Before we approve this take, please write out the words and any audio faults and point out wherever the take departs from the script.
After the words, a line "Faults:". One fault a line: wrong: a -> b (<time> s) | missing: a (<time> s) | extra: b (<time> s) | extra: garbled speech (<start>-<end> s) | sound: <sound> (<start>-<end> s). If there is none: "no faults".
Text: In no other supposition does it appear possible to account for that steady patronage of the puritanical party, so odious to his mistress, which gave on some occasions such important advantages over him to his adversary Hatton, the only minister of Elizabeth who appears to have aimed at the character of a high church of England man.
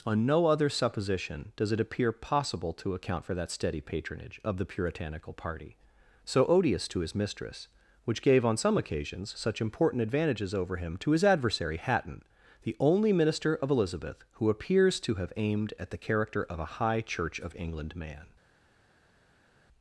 On no other supposition does it appear possible to account for that steady patronage of the puritanical party, so odious to his mistress, which gave on some occasions such important advantages over him to his adversary Hatton, the only minister of Elizabeth who appears to have aimed at the character of a high church of England man.
Faults:
wrong: In -> On (0.0 s)